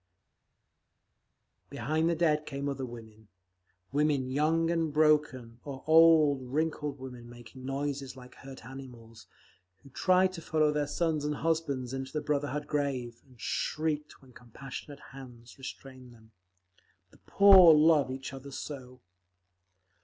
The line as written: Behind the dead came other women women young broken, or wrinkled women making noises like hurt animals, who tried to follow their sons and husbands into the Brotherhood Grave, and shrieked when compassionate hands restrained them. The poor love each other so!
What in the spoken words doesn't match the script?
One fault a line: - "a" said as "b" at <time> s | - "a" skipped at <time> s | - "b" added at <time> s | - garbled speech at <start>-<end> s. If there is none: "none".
- "and" added at 4.7 s
- "old" added at 5.9 s